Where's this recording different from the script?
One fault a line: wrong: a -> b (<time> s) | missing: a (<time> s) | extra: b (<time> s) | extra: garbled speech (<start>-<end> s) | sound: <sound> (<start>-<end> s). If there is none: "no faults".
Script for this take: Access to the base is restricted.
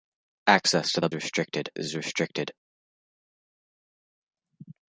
wrong: base -> restricted (1.1 s)